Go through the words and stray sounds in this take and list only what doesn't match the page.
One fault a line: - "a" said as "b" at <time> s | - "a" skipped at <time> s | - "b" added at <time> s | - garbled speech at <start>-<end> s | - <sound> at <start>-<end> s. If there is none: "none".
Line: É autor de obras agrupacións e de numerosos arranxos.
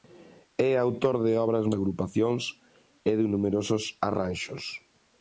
none